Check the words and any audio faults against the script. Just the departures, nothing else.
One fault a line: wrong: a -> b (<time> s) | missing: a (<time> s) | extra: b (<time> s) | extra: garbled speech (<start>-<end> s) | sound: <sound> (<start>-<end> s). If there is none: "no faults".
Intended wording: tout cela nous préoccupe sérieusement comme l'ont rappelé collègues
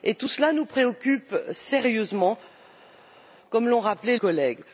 no faults